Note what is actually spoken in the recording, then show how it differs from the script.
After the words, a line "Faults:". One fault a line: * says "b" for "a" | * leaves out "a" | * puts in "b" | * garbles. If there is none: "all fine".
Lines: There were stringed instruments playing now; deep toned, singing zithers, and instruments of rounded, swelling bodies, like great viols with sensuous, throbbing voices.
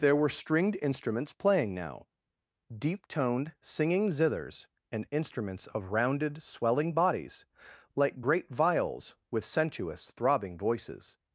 There were stringed instruments playing now; deep toned, singing zithers, and instruments of rounded, swelling bodies, like great viols with sensuous, throbbing voices.
Faults:
all fine